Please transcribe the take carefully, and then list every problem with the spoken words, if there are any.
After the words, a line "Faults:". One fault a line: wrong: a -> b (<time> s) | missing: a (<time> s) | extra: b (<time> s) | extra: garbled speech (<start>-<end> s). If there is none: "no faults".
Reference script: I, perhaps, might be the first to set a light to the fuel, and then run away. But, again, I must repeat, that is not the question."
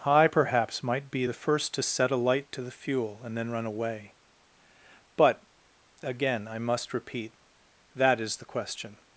I, perhaps, might be the first to set a light to the fuel, and then run away. But, again, I must repeat, that is the question."
Faults:
missing: not (8.4 s)